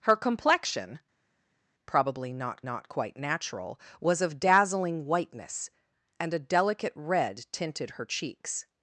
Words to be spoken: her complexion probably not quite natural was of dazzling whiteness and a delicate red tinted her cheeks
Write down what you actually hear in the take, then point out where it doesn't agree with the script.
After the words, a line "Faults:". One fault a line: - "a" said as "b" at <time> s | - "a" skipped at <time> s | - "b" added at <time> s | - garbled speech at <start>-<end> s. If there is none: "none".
her complexion probably not not quite natural was of dazzling whiteness and a delicate red tinted her cheeks
Faults:
- "not" added at 2.6 s